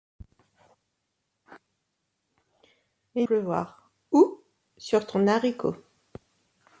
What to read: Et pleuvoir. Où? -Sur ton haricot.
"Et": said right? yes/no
yes